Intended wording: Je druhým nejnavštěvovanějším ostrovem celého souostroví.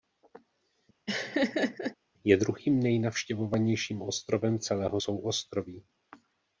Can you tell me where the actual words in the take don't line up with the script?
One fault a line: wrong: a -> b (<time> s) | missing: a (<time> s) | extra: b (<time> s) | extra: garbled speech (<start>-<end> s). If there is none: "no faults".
no faults